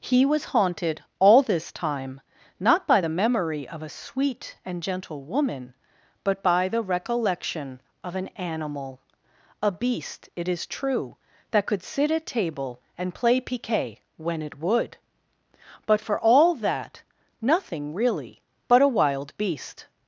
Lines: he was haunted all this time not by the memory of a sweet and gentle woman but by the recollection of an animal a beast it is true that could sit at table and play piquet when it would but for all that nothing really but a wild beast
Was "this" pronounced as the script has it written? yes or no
yes